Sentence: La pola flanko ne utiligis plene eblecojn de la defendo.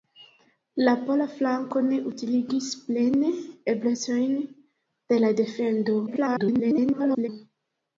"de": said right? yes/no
yes